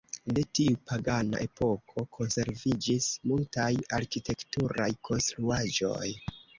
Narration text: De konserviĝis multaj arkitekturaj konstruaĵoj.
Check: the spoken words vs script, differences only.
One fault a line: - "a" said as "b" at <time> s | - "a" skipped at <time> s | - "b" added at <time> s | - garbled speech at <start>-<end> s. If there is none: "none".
- "tiu pagana epoko" added at 0.6 s